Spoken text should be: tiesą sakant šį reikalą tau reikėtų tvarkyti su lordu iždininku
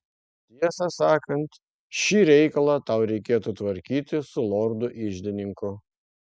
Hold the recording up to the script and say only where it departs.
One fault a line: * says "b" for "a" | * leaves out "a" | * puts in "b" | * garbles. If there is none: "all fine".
all fine